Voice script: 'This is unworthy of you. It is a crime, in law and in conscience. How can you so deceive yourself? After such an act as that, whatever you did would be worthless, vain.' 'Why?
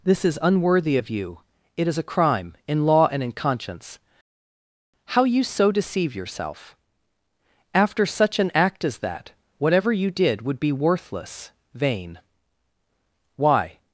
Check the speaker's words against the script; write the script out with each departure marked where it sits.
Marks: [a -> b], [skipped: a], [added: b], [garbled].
'This is unworthy of you. It is a crime, in law and in conscience. How [skipped: can] you so deceive yourself? After such an act as that, whatever you did would be worthless, vain.' 'Why?